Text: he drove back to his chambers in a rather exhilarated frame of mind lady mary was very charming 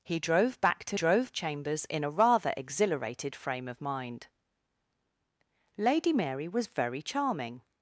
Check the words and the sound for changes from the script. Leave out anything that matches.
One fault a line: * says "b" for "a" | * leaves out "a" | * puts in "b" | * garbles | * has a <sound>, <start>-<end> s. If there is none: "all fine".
* says "drove" for "his"